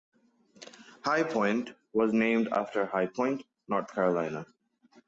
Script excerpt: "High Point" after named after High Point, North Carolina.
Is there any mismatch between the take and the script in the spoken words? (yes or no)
yes